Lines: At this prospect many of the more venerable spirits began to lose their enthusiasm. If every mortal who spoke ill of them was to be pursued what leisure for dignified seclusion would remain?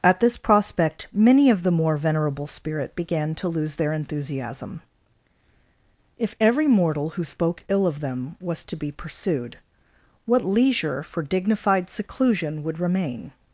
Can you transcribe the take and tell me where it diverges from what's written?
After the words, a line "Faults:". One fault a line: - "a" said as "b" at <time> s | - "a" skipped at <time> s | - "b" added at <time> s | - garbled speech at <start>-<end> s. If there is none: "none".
At this prospect many of the more venerable spirit began to lose their enthusiasm. If every mortal who spoke ill of them was to be pursued what leisure for dignified seclusion would remain?
Faults:
- "spirits" said as "spirit" at 2.5 s